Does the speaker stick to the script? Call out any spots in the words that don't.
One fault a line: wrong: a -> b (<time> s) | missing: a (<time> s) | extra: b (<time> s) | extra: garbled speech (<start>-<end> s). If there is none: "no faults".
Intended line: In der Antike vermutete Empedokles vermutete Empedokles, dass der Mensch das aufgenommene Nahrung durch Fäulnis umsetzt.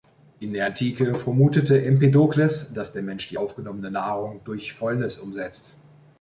missing: vermutete Empedokles (2.7 s)
wrong: das -> die (3.3 s)